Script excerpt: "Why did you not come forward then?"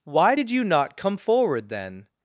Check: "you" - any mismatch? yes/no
no